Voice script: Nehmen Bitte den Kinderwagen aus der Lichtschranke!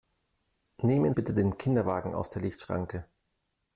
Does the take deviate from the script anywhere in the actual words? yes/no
no